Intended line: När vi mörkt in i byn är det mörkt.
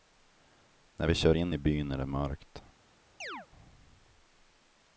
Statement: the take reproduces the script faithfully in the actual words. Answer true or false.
false